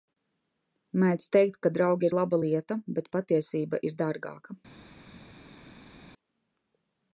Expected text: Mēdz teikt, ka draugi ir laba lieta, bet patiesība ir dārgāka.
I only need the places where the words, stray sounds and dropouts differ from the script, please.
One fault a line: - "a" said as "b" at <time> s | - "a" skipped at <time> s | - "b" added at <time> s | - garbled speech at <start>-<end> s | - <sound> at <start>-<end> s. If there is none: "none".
none